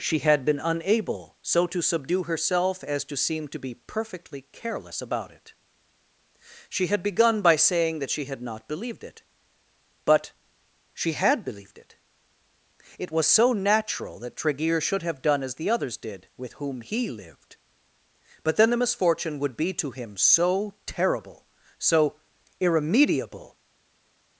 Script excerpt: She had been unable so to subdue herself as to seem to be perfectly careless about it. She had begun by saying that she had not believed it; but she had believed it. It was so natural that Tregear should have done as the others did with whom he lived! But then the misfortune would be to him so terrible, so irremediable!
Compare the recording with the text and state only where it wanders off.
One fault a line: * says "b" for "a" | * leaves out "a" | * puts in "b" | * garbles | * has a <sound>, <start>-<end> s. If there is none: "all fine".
all fine